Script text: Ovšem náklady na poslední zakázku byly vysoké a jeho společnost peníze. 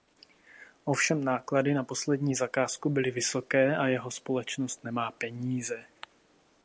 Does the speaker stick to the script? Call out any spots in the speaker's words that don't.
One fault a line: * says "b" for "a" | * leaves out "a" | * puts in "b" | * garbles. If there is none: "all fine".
* puts in "nemá"